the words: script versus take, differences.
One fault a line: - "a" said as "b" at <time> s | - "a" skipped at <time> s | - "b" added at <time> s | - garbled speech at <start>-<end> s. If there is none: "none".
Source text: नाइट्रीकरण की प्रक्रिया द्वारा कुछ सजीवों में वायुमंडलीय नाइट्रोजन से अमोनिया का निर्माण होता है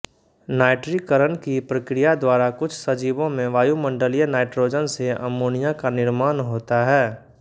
none